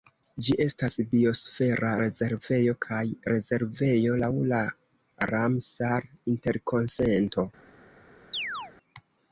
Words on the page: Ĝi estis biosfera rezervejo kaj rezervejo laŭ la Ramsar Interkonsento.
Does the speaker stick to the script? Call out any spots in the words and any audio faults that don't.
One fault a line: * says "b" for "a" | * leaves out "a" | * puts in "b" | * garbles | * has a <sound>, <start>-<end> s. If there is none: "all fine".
* says "estas" for "estis"
* has a chirp, 8.3-8.7 s